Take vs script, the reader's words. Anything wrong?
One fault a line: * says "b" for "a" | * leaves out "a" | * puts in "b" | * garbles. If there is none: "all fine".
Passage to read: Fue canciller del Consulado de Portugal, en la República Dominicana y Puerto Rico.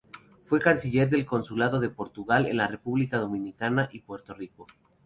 all fine